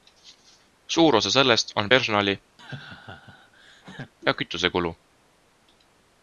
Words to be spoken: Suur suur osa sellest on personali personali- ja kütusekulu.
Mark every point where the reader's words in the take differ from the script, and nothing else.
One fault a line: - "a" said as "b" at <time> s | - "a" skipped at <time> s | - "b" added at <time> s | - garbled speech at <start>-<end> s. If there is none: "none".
- "suur" skipped at 1.1 s
- "personali" skipped at 2.4 s